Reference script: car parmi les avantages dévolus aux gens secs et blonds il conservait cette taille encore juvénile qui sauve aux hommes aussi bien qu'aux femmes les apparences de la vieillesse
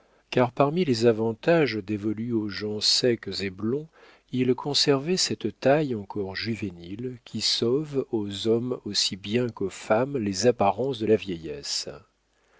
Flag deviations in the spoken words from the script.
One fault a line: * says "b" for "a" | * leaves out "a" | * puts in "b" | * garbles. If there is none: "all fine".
all fine